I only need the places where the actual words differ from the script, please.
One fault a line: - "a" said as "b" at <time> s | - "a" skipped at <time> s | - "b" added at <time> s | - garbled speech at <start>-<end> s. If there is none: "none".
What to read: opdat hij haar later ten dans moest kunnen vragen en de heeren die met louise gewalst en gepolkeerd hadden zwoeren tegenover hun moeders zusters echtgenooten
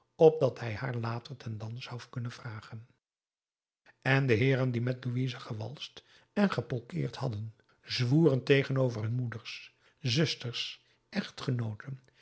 - "moest" said as "zou" at 1.8 s